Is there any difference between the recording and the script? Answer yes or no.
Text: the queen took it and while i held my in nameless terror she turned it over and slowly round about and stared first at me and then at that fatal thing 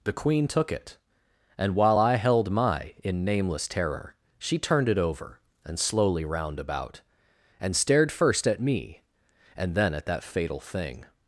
no